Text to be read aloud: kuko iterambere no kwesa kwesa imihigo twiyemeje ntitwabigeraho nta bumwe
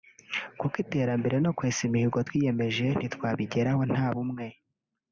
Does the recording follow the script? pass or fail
fail